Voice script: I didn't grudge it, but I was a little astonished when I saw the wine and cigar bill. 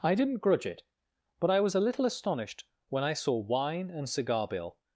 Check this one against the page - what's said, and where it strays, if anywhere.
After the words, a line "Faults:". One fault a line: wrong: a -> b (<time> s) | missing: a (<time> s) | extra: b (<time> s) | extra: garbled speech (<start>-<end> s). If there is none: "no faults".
I didn't grudge it, but I was a little astonished when I saw wine and cigar bill.
Faults:
missing: the (3.4 s)